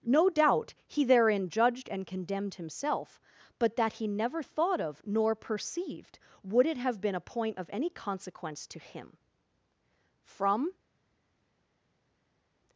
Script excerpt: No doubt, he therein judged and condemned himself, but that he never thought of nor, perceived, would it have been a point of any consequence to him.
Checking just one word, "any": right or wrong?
right